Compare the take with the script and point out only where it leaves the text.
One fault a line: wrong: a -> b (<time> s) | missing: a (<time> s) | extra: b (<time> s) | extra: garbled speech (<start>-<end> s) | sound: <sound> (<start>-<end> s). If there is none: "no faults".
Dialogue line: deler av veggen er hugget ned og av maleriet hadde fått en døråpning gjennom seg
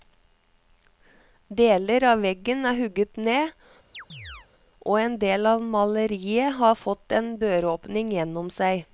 sound: chirp (3.9-4.5 s)
extra: en del (5.0 s)
wrong: hadde -> har (6.6 s)